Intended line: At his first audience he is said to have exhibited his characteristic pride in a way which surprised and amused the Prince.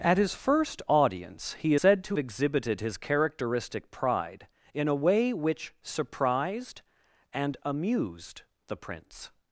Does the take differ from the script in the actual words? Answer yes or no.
yes